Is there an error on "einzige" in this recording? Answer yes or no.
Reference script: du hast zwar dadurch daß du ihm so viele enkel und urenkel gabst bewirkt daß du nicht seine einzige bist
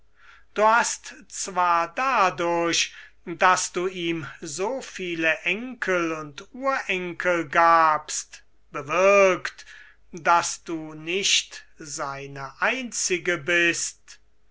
no